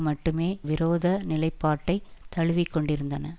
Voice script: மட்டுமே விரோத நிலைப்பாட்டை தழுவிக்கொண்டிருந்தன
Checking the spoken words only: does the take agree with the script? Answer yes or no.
yes